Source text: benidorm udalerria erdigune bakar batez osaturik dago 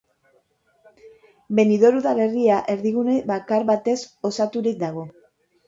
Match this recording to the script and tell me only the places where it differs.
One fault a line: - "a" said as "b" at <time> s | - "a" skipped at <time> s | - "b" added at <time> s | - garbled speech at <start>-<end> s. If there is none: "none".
none